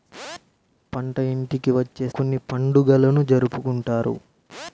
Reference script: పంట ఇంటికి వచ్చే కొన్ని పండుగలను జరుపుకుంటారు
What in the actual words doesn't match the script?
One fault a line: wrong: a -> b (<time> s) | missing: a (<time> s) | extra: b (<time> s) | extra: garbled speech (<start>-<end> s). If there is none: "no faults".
no faults